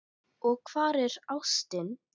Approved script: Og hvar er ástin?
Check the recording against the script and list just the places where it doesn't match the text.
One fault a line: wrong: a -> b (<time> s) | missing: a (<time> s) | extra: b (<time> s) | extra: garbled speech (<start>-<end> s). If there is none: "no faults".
no faults